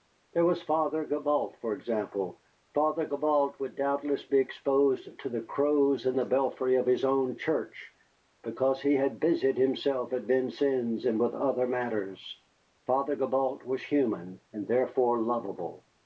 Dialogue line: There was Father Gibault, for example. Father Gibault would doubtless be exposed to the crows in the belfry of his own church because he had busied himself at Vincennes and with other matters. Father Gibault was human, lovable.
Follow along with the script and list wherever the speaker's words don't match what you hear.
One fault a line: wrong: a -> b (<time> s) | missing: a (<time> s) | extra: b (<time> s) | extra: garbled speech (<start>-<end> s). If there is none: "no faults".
extra: and therefore (14.5 s)